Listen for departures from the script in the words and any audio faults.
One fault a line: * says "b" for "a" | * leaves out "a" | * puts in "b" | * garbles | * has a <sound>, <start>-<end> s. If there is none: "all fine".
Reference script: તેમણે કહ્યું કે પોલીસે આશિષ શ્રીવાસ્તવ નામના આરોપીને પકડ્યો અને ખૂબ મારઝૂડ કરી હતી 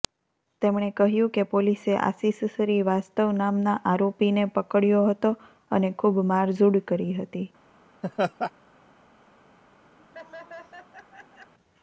* puts in "હતો"
* has a laugh, 8.0-8.5 s
* has a laugh, 10.0-11.5 s